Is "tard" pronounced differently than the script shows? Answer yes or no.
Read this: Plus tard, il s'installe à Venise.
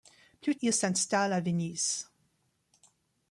yes